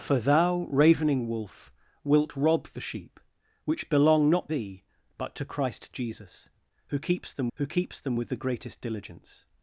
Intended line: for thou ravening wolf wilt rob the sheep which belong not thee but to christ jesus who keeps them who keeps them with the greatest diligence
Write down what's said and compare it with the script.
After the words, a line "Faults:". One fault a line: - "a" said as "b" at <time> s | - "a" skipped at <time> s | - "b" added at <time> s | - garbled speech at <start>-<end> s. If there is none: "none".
for thou ravening wolf wilt rob the sheep which belong not thee but to christ jesus who keeps them who keeps them with the greatest diligence
Faults:
none